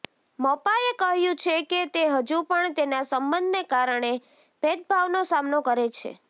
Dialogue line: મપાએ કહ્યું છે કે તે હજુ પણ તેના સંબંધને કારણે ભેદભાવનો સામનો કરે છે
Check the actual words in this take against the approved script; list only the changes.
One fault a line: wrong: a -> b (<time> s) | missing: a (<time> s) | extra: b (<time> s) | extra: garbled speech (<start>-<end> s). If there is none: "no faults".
no faults